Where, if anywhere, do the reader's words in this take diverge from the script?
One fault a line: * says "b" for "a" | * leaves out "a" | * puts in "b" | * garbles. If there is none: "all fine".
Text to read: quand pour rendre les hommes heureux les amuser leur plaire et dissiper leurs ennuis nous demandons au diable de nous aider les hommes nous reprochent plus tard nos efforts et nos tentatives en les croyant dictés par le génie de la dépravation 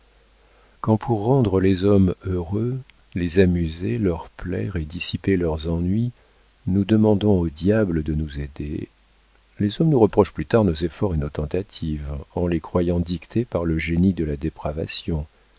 all fine